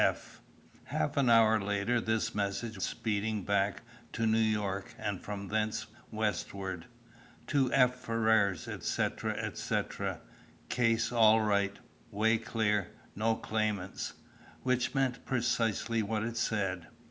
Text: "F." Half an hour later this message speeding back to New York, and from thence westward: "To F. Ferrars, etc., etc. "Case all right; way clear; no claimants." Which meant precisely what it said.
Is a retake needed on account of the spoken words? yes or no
no